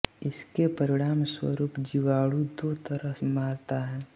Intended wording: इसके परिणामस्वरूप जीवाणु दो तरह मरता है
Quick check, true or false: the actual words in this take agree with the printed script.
true